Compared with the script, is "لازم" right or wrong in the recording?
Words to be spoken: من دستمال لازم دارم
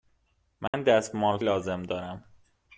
right